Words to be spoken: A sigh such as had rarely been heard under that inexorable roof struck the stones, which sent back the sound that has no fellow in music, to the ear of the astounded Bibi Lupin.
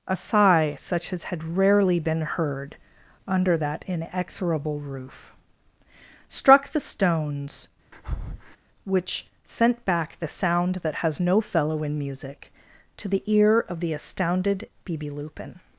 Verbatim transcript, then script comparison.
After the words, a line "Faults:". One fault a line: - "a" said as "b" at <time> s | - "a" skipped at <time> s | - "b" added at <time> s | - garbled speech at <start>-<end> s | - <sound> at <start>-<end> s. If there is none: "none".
A sigh such as had rarely been heard under that inexorable roof struck the stones, which sent back the sound that has no fellow in music, to the ear of the astounded Bibi Lupin.
Faults:
- breath at 7.9-8.6 s